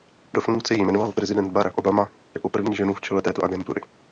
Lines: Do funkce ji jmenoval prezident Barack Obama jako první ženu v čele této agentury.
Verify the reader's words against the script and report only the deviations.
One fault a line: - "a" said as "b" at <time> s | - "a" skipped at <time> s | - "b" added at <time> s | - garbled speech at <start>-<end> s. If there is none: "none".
none